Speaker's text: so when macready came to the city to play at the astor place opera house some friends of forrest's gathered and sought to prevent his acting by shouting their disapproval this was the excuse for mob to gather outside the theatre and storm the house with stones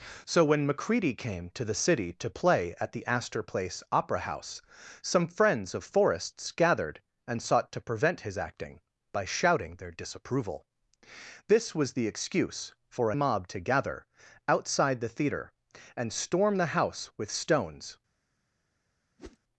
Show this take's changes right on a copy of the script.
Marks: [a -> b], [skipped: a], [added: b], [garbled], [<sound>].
so when macready came to the city to play at the astor place opera house some friends of forrest's gathered and sought to prevent his acting by shouting their disapproval this was the excuse for mob to gather outside the theatre and storm the house with stones [whoosh]